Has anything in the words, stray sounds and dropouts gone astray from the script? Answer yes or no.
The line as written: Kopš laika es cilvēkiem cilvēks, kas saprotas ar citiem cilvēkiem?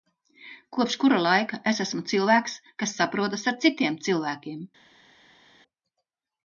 yes